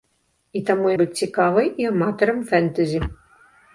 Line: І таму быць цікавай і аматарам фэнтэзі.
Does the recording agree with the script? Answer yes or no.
yes